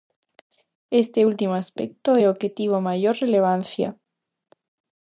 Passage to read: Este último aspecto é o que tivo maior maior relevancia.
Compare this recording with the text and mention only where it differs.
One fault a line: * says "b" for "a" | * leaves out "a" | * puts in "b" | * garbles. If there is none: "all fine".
* leaves out "maior"